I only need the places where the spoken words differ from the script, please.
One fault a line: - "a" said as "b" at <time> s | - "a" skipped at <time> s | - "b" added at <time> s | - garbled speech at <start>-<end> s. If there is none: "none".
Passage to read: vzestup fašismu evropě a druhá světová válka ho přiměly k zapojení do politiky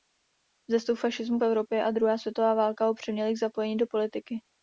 none